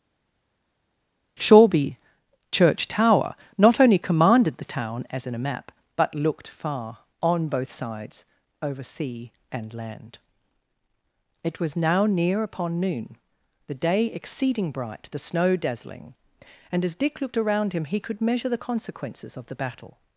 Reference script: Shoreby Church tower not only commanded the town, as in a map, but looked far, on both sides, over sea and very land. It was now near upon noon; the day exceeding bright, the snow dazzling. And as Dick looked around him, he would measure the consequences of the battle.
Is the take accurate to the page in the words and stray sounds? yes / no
no